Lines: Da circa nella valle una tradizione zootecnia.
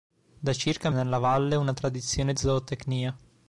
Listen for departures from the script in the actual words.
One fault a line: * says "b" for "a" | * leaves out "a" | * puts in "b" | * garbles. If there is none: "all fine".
all fine